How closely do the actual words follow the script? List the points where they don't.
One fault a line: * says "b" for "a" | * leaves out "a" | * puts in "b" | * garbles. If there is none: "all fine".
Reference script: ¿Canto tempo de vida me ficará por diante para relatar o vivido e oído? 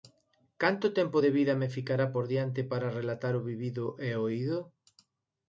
all fine